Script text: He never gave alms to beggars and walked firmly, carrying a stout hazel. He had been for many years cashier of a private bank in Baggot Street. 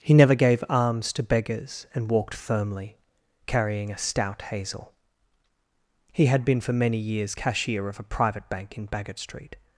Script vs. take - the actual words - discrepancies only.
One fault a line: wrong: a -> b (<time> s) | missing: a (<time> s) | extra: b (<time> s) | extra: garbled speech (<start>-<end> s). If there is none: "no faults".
no faults